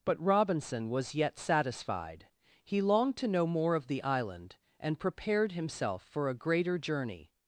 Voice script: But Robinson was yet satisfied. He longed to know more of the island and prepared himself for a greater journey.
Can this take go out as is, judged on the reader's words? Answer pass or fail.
pass